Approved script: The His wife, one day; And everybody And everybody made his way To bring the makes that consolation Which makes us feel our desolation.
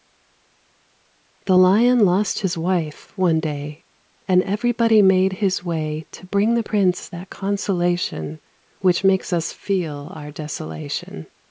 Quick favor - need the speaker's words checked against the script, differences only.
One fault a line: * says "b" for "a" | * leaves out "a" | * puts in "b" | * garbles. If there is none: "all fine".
* puts in "Lion lost"
* leaves out "And everybody"
* says "prince" for "makes"